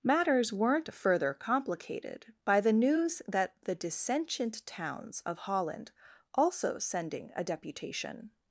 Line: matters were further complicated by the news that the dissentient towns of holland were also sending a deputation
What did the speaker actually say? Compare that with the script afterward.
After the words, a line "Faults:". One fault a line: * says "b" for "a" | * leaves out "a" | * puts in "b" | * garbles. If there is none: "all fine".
matters weren't further complicated by the news that the dissentient towns of holland also sending a deputation
Faults:
* says "weren't" for "were"
* leaves out "were"